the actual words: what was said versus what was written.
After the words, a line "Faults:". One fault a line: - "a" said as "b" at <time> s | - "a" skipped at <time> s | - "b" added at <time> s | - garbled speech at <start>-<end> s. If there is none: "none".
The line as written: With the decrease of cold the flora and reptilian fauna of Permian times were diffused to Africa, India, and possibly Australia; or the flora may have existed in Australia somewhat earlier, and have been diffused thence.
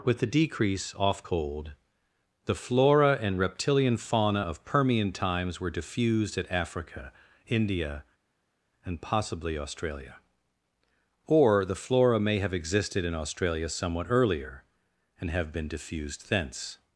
With the decrease off cold the flora and reptilian fauna of Permian times were diffused at Africa, India, and possibly Australia; or the flora may have existed in Australia somewhat earlier, and have been diffused thence.
Faults:
- "of" said as "off" at 0.9 s
- "to" said as "at" at 6.4 s